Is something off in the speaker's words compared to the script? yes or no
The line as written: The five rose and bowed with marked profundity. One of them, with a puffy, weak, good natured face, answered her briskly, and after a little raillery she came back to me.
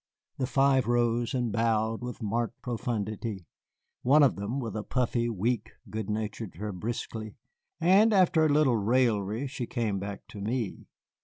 yes